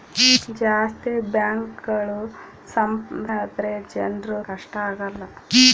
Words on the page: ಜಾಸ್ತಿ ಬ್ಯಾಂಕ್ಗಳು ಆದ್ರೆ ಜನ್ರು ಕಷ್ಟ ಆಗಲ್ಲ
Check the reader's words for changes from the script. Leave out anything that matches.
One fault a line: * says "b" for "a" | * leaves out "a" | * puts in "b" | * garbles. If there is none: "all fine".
all fine